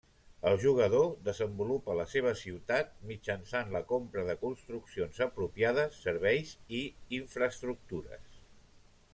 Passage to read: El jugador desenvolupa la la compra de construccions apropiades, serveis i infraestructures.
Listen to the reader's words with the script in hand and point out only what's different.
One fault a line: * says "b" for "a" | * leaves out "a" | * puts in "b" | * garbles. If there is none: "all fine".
* puts in "seva ciutat mitjançant"